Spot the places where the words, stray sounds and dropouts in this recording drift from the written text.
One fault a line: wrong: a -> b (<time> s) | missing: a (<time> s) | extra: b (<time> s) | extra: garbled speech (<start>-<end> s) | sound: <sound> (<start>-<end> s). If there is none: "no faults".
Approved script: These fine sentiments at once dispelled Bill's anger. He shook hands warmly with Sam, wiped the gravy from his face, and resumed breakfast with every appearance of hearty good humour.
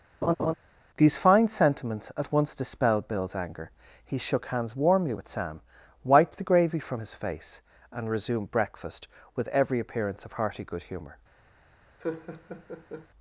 sound: laugh (0.2-0.5 s)
sound: laugh (12.0-13.1 s)